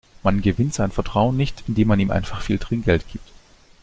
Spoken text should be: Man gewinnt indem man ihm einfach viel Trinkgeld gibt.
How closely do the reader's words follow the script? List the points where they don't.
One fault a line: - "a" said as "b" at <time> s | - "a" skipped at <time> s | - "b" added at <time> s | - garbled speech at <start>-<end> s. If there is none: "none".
- "sein Vertrauen nicht" added at 0.7 s